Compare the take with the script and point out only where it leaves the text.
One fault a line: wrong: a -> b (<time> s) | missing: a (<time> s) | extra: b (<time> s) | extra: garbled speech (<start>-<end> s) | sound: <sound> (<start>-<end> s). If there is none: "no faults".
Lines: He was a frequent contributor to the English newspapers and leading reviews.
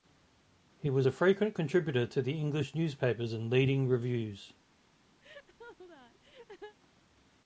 sound: laugh (5.2-6.8 s)